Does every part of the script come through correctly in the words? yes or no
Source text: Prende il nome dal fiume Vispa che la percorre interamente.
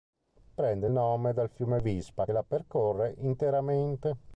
no